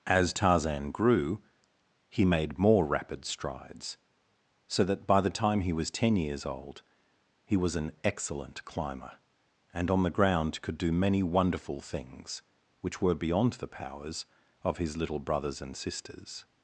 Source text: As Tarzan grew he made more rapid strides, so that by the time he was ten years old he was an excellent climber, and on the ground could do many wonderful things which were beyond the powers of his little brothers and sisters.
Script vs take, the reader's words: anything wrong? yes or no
no